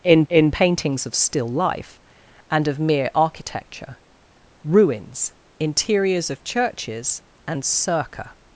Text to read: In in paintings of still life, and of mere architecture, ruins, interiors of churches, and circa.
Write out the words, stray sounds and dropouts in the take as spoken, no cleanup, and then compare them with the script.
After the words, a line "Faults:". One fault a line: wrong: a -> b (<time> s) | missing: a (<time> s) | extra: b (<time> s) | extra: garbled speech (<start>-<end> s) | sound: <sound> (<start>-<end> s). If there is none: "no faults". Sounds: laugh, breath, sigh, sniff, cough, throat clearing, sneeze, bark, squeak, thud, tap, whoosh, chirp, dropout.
In in paintings of still life, and of mere architecture, ruins, interiors of churches, and circa.
Faults:
no faults